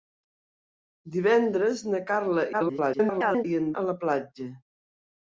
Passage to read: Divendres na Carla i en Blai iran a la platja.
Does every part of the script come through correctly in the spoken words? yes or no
no